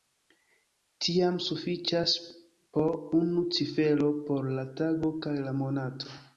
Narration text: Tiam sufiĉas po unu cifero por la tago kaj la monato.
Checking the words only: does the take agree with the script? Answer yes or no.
yes